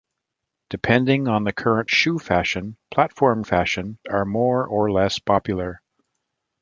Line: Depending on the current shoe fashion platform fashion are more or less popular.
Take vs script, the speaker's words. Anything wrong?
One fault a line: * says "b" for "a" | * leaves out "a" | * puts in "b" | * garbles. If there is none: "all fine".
all fine